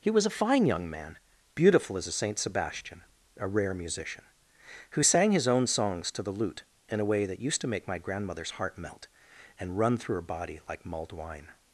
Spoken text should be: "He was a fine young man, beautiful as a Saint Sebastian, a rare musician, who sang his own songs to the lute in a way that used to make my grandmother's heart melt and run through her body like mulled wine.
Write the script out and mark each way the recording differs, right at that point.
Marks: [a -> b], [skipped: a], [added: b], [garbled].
"He was a fine young man, beautiful as a Saint Sebastian, a rare musician, who sang his own songs to the lute in a way that used to make my grandmother's heart melt and run through her body like mulled wine.